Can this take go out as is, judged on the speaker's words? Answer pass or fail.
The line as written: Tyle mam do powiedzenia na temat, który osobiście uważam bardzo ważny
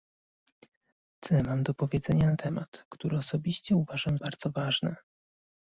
pass